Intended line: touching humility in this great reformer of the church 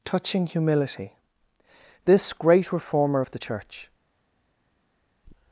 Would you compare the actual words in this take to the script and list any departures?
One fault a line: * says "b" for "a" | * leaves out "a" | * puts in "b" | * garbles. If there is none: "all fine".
* leaves out "in"